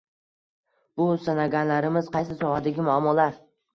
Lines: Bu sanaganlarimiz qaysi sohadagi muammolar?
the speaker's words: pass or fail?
pass